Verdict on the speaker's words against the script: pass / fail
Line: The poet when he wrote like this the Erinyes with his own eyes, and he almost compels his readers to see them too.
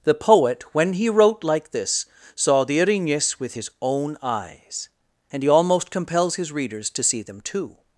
fail